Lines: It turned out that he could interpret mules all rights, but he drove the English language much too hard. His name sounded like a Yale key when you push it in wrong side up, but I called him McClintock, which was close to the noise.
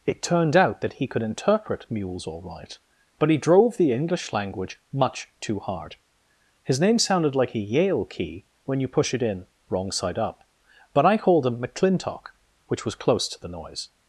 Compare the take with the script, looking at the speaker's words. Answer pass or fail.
fail